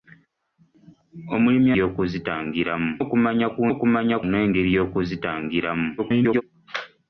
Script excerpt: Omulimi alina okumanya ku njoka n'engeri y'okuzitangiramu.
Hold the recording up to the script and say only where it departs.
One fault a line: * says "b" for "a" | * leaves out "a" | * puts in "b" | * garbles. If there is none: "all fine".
* says "y'okuzitangiramu" for "alina"
* says "okumanya" for "njoka"
* garbles